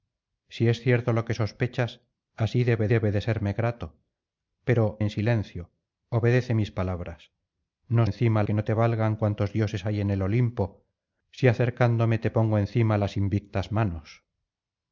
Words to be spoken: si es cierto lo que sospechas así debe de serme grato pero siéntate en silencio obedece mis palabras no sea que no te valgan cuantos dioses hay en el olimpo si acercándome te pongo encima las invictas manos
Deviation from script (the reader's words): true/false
true